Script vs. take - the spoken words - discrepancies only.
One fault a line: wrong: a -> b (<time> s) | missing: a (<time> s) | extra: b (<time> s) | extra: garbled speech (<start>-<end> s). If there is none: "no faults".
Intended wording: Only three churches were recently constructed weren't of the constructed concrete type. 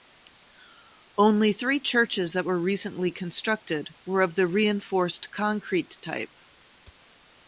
extra: that (2.3 s)
wrong: weren't -> were (4.0 s)
wrong: constructed -> reinforced (4.5 s)